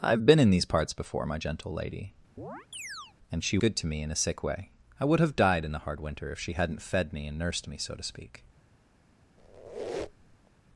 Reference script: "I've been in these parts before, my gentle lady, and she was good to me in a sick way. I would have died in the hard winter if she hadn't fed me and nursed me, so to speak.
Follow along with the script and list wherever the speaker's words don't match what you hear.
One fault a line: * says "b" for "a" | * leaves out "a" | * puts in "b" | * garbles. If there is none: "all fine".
* leaves out "was"